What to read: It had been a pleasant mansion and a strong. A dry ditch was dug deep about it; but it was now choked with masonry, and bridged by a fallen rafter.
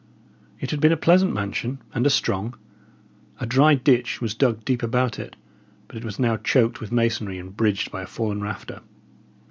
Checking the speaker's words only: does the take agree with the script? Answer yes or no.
yes